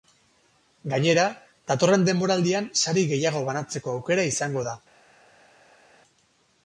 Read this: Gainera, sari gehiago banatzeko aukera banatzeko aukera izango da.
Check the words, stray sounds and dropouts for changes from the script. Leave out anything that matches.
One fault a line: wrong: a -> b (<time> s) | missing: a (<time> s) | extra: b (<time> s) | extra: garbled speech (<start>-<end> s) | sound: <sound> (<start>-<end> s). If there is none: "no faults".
extra: datorren denboraldian (1.7 s)
missing: banatzeko aukera (4.3 s)